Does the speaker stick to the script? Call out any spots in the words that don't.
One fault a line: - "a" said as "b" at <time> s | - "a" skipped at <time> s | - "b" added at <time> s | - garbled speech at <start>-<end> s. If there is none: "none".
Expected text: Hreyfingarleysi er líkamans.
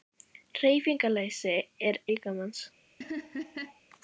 none